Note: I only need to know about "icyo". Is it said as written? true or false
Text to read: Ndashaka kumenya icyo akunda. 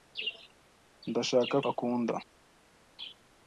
false